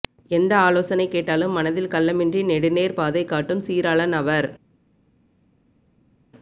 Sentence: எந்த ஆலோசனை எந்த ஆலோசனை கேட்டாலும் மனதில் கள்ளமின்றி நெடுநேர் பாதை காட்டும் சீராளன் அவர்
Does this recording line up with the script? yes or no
no